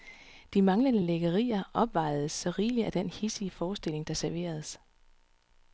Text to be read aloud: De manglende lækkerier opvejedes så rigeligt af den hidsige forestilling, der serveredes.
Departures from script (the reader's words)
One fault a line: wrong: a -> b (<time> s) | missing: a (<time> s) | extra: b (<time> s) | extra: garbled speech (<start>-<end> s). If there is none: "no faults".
no faults